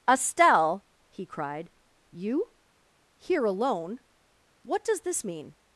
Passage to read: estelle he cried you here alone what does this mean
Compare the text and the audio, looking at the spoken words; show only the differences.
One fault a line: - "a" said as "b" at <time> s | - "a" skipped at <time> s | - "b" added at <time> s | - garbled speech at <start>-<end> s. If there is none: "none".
none